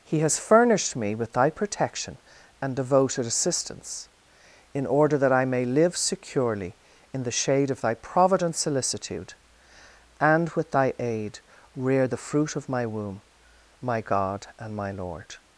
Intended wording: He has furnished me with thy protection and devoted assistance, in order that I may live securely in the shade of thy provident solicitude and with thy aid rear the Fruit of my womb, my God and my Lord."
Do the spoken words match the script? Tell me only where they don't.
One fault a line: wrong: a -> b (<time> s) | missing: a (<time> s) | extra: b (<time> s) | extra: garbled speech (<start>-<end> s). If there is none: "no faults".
no faults